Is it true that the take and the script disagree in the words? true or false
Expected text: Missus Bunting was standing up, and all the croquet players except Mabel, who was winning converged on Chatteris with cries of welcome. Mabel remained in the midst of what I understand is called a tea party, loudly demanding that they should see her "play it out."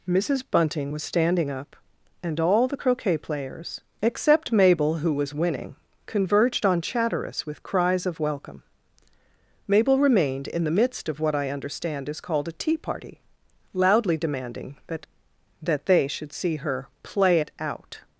true